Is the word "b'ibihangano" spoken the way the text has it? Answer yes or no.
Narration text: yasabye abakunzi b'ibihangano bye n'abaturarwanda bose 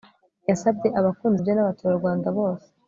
no